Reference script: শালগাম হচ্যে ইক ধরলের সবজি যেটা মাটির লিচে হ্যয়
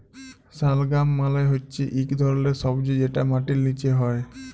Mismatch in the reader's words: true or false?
true